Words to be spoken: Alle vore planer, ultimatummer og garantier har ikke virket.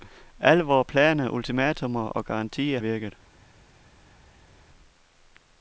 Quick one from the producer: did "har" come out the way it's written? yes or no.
no